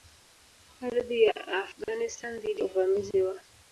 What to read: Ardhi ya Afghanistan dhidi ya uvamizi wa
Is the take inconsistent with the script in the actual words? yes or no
yes